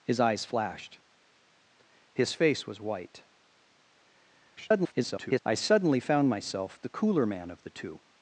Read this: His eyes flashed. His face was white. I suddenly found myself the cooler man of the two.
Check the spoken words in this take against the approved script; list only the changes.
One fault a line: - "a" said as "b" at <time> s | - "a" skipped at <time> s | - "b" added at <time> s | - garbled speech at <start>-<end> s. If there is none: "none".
- garbled speech at 4.6-5.4 s